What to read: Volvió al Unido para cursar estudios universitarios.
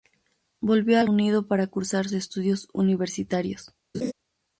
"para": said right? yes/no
yes